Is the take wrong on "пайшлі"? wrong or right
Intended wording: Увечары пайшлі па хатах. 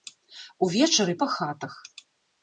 wrong